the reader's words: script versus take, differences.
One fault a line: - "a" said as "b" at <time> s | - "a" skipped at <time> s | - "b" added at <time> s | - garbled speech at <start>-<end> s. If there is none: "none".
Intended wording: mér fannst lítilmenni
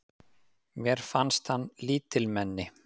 - "hann" added at 1.5 s